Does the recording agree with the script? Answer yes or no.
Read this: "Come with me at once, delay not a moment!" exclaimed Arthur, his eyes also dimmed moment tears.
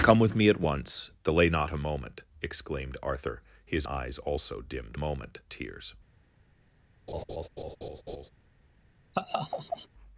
yes